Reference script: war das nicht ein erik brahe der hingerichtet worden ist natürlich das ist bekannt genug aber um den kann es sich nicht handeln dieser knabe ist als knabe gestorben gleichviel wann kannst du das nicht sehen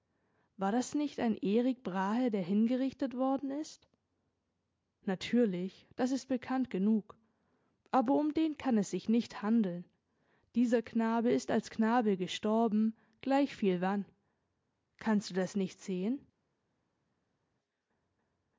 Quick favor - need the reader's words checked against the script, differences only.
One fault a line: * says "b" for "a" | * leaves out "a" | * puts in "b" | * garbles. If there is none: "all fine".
all fine